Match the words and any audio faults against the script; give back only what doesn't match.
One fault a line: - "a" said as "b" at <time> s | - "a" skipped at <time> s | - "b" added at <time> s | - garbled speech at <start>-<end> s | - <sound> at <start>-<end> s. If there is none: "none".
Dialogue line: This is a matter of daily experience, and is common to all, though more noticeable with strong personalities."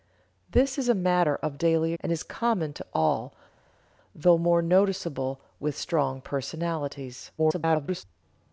- "experience" skipped at 1.9 s
- garbled speech at 7.4-8.0 s